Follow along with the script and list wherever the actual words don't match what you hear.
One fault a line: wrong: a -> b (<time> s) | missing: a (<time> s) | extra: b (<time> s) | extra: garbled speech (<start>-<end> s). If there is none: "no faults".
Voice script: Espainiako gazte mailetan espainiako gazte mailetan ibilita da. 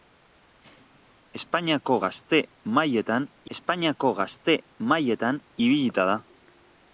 no faults